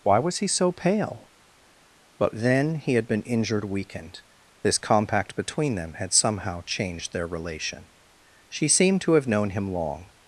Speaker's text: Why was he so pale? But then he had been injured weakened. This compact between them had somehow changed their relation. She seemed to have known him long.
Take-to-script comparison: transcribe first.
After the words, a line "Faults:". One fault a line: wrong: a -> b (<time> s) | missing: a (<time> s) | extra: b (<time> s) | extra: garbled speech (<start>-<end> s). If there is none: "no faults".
Why was he so pale? But then he had been injured weakened. This compact between them had somehow changed their relation. She seemed to have known him long.
Faults:
no faults